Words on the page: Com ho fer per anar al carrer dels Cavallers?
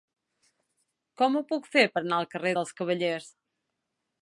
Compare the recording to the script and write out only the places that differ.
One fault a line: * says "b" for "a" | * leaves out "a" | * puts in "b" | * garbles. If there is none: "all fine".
* puts in "puc"